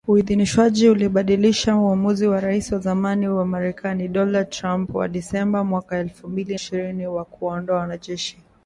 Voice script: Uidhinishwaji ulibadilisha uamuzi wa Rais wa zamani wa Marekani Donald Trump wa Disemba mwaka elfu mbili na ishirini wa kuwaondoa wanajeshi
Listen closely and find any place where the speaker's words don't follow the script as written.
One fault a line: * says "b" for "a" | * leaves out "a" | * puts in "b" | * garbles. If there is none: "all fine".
* leaves out "na"